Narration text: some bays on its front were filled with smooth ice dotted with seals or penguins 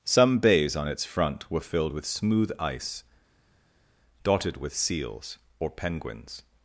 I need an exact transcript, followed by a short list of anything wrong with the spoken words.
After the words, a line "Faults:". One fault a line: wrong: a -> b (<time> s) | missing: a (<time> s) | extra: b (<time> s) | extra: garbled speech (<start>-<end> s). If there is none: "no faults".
some bays on its front were filled with smooth ice dotted with seals or penguins
Faults:
no faults